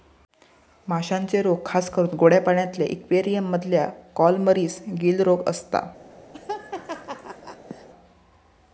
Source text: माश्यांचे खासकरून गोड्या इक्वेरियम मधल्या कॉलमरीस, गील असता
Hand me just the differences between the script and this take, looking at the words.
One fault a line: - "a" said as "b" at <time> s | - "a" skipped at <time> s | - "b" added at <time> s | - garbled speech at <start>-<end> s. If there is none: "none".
- "रोग" added at 1.4 s
- "पाण्यातल्या" added at 2.4 s
- "रोग" added at 5.2 s